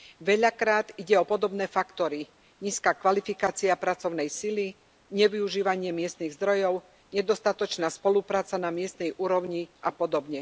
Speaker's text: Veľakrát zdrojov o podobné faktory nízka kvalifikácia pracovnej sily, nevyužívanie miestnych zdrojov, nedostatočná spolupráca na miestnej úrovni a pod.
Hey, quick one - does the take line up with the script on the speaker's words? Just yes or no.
no